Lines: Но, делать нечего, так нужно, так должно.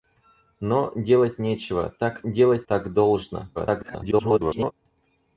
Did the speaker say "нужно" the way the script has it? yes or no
no